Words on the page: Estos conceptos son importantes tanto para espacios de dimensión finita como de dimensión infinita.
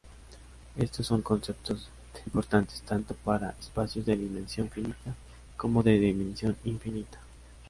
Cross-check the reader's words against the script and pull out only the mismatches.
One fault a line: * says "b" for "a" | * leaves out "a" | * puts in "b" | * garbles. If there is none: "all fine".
* leaves out "son"